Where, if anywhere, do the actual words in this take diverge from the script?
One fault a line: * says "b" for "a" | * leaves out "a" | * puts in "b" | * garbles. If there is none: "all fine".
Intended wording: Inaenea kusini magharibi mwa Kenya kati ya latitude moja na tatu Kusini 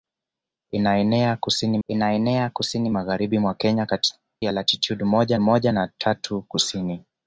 * puts in "inaenea kusini"
* leaves out "kati"
* puts in "moja"